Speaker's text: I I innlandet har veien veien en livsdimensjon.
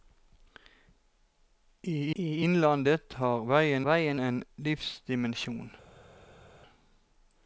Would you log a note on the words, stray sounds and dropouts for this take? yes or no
no